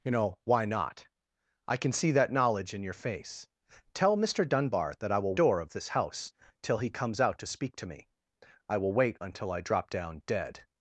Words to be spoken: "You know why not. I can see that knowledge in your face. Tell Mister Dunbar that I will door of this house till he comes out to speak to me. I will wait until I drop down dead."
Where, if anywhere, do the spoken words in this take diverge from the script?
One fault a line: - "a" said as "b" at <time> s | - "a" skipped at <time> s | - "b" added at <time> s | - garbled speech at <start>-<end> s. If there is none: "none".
none